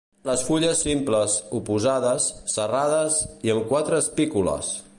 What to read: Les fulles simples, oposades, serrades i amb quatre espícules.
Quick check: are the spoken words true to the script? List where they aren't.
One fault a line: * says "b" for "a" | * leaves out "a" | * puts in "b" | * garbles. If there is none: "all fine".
all fine